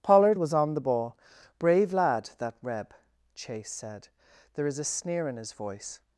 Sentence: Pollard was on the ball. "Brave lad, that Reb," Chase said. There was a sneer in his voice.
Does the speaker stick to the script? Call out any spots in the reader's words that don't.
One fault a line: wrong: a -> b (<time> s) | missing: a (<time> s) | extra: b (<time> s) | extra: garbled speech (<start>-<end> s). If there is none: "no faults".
wrong: was -> is (4.7 s)